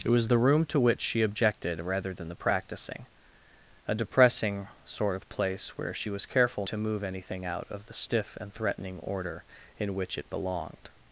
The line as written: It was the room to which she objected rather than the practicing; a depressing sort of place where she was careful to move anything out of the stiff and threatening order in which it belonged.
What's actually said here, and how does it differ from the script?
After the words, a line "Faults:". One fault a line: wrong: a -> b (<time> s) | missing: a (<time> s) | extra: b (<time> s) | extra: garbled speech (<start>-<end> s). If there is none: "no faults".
It was the room to which she objected rather than the practicing; a depressing sort of place where she was careful to move anything out of the stiff and threatening order in which it belonged.
Faults:
no faults